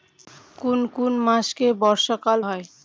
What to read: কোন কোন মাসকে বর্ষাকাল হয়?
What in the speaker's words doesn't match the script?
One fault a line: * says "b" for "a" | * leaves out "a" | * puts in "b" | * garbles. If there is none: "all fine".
all fine